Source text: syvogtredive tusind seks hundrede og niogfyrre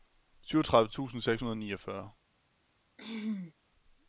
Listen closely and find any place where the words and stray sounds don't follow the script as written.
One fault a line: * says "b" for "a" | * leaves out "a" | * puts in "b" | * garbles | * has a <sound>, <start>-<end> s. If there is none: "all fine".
* has a throat clearing, 3.0-3.5 s